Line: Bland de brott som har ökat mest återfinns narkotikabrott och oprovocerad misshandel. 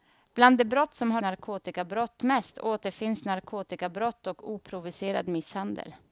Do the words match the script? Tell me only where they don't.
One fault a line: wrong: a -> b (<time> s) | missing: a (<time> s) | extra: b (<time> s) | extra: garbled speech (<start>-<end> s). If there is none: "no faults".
wrong: ökat -> narkotikabrott (1.2 s)